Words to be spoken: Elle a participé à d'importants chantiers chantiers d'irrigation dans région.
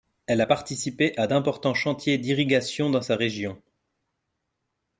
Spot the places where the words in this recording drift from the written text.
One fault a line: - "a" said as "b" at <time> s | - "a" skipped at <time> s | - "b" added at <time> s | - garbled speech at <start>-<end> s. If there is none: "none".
- "chantiers" skipped at 2.2 s
- "sa" added at 3.0 s